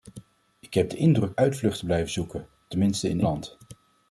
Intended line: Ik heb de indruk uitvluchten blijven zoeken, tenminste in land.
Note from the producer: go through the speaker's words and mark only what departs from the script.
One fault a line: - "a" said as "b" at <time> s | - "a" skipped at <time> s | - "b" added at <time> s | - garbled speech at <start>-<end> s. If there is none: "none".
none